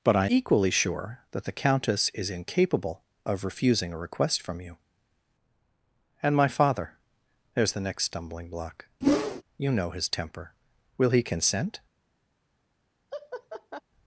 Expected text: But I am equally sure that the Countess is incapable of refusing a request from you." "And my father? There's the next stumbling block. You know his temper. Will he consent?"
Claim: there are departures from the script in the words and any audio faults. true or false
true